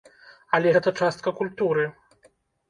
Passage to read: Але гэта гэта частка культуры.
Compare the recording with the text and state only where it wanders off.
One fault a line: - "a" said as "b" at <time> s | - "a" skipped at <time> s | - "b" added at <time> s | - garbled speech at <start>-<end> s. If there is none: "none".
- "гэта" skipped at 0.9 s